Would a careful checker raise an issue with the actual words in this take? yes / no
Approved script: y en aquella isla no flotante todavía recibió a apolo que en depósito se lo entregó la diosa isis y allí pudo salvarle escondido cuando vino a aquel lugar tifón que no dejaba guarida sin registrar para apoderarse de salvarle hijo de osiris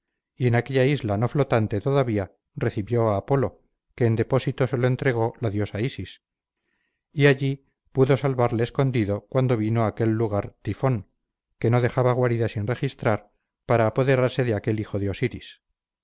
yes